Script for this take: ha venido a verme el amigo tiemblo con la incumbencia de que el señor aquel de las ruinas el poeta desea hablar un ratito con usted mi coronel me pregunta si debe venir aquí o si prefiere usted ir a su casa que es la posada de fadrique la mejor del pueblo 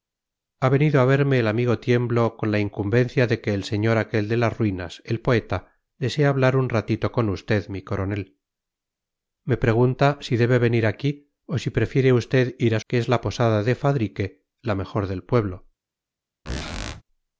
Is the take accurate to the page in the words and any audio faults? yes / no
no